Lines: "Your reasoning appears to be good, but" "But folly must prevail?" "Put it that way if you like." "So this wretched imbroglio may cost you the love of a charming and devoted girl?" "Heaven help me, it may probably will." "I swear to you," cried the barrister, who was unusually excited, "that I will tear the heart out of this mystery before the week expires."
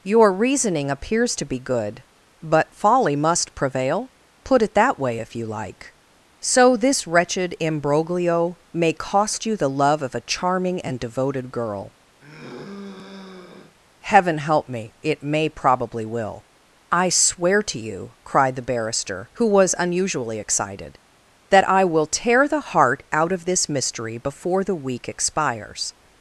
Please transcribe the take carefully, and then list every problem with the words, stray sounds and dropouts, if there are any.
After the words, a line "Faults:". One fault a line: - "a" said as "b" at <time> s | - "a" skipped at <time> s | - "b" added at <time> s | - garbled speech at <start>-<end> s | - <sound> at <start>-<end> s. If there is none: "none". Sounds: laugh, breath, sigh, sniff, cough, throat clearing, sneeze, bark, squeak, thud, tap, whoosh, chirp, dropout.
"Your reasoning appears to be good, but" folly must prevail?" "Put it that way if you like." "So this wretched imbroglio may cost you the love of a charming and devoted girl?" "Heaven help me, it may probably will." "I swear to you," cried the barrister, who was unusually excited, "that I will tear the heart out of this mystery before the week expires."
Faults:
- "But" skipped at 2.7 s
- sigh at 12.2-13.8 s